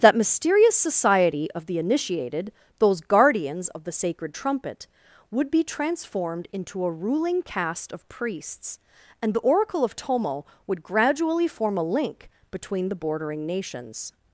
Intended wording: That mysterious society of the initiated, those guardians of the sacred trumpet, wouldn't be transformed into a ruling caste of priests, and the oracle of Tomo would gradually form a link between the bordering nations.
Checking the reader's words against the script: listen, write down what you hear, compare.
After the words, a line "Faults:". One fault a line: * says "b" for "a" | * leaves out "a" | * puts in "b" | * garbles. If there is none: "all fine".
That mysterious society of the initiated, those guardians of the sacred trumpet, would be transformed into a ruling caste of priests, and the oracle of Tomo would gradually form a link between the bordering nations.
Faults:
* says "would" for "wouldn't"